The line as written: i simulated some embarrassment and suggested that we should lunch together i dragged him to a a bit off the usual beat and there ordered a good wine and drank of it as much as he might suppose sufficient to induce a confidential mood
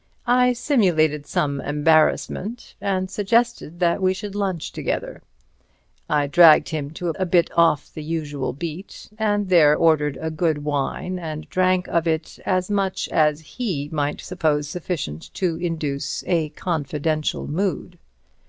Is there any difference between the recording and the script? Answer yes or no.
no